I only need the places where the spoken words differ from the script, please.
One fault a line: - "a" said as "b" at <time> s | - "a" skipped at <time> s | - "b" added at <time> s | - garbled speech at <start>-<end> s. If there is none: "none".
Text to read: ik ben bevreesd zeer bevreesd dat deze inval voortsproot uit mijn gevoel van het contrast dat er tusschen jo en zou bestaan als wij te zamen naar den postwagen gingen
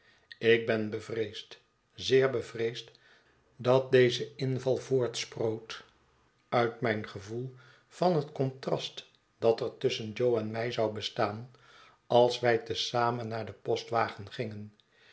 - "mij" added at 10.5 s